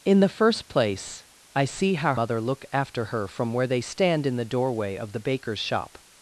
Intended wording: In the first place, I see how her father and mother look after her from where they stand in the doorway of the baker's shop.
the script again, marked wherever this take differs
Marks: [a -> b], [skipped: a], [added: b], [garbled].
In the first place, I see how [skipped: her father and] mother look after her from where they stand in the doorway of the baker's shop.